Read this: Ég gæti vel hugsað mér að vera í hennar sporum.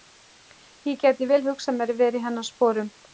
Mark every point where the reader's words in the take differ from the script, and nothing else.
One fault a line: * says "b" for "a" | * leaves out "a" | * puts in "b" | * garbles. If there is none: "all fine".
all fine